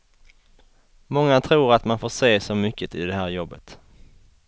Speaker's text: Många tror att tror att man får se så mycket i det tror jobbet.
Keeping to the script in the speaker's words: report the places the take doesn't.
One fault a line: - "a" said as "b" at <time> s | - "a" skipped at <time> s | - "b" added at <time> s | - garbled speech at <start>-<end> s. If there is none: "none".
- "tror att" skipped at 1.9 s
- "tror" said as "här" at 3.1 s